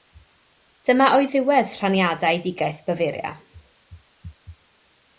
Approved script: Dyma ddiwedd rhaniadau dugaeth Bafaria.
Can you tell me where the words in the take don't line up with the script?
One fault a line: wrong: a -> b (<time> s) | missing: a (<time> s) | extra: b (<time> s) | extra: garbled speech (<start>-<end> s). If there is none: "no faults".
extra: oedd (1.2 s)